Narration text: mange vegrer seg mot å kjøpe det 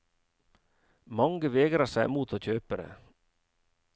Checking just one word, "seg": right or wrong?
right